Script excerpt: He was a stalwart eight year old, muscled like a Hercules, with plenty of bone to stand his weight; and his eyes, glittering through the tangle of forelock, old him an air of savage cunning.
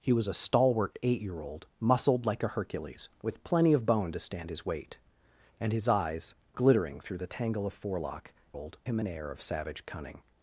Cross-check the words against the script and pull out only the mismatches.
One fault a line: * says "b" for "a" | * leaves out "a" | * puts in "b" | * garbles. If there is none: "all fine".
all fine